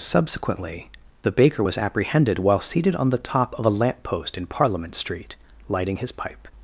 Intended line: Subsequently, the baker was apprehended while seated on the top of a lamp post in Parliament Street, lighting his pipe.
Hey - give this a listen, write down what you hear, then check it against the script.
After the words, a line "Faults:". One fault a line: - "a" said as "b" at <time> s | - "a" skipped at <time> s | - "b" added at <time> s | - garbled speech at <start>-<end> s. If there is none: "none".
Subsequently, the baker was apprehended while seated on the top of a lamp post in Parliament Street, lighting his pipe.
Faults:
none